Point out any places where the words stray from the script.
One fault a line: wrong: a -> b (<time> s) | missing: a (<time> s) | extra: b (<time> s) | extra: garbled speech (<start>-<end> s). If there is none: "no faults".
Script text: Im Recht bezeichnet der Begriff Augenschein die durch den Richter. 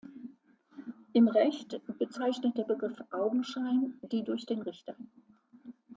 no faults